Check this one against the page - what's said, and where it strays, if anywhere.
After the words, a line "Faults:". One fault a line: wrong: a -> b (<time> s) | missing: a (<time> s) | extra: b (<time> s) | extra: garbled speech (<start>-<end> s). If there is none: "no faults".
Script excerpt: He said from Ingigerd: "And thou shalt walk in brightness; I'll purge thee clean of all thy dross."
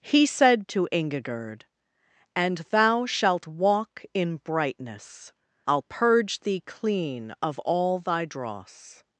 He said to Ingigerd: "And thou shalt walk in brightness; I'll purge thee clean of all thy dross."
Faults:
wrong: from -> to (0.7 s)